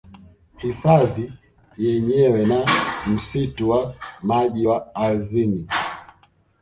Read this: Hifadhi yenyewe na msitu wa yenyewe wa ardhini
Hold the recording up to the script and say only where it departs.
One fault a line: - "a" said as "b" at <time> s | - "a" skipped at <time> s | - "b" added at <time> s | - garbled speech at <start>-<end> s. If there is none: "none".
- "yenyewe" said as "maji" at 4.2 s